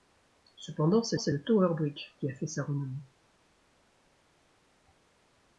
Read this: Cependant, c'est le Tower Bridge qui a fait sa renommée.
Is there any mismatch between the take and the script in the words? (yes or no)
yes